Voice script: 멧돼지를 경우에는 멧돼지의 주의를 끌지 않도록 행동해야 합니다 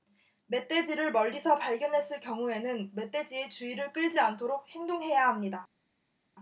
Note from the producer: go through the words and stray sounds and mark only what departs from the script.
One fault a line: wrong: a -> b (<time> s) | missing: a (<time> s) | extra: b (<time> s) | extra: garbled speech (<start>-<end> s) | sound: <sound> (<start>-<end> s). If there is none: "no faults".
extra: 멀리서 발견했을 (1.1 s)